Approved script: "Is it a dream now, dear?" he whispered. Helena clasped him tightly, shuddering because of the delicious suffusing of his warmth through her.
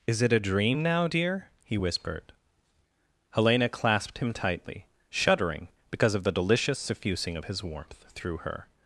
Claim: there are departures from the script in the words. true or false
false